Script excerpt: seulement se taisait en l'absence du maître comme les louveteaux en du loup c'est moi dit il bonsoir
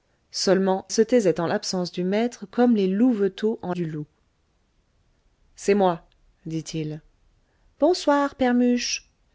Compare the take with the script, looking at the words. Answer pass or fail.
pass